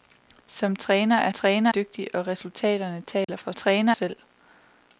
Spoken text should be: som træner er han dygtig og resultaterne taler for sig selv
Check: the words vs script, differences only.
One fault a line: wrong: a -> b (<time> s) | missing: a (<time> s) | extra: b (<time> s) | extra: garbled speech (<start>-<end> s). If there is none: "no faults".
wrong: han -> træner (1.3 s)
wrong: sig -> træner (3.5 s)